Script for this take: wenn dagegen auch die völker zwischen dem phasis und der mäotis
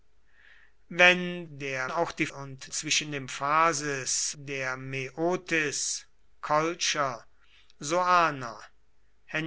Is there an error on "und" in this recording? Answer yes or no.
yes